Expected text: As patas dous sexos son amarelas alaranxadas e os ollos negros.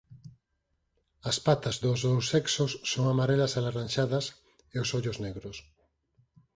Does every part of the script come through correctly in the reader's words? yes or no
no